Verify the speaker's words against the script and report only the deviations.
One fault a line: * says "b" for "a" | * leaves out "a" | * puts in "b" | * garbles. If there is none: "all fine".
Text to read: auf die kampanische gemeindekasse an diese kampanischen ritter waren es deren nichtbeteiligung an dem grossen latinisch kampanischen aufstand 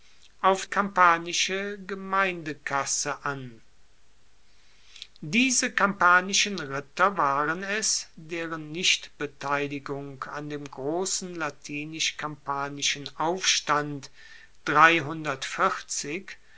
* leaves out "die"